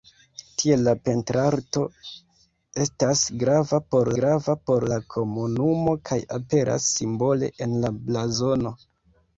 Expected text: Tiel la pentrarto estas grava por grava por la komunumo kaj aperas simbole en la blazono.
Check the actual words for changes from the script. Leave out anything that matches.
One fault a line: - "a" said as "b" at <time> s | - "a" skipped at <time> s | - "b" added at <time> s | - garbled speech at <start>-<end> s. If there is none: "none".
none